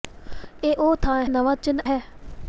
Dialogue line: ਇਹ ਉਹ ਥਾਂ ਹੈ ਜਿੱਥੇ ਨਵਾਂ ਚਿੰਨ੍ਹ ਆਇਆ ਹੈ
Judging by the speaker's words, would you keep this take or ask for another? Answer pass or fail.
fail